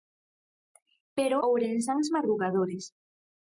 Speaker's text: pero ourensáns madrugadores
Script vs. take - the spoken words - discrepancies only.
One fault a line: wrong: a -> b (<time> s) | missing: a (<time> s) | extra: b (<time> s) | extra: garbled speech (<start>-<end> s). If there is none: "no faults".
no faults